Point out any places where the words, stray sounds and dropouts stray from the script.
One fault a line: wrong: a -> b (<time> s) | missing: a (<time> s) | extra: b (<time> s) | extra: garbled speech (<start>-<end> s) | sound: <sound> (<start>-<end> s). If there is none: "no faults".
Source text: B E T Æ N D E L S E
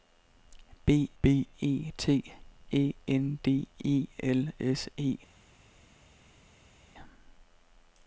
extra: b (1.2 s)